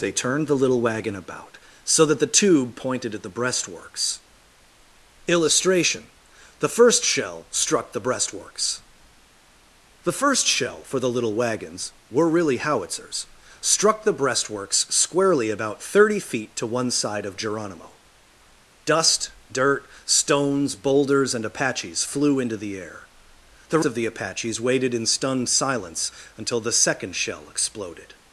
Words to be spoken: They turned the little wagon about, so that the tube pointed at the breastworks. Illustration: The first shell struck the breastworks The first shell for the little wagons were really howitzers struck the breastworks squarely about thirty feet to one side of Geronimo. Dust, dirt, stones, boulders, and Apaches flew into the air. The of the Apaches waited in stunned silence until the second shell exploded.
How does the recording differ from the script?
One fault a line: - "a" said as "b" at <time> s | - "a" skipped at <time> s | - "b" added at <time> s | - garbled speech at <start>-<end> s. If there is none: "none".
none